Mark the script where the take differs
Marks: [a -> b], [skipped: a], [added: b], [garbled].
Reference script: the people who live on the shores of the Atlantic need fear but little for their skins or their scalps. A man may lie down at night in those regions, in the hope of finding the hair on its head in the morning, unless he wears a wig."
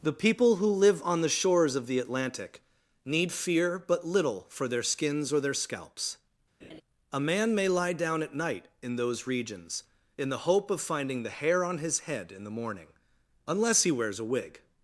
the people who live on the shores of the Atlantic need fear but little for their skins or their scalps. A man may lie down at night in those regions, in the hope of finding the hair on [its -> his] head in the morning, unless he wears a wig."